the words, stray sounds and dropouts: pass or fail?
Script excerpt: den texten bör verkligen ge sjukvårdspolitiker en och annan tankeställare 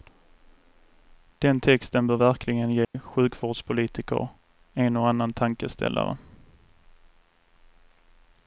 fail